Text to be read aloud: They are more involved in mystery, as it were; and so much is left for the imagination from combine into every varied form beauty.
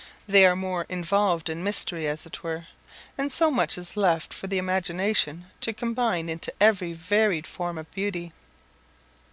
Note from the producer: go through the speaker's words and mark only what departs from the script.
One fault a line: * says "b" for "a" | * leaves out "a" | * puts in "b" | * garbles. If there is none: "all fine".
* says "to" for "from"
* puts in "of"